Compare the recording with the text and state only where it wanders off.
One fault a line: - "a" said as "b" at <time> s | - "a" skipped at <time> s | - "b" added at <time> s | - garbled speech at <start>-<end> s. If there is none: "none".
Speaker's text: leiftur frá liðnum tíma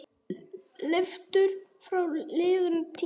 none